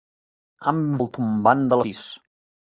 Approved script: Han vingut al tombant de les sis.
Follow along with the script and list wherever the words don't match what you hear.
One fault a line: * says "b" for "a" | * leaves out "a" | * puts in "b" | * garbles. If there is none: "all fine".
* leaves out "vingut"
* leaves out "les"